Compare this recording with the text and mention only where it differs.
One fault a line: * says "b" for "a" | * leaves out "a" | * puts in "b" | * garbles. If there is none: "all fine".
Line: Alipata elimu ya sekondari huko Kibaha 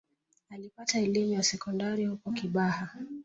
all fine